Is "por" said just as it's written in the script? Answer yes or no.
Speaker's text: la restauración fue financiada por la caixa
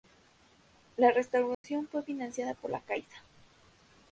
yes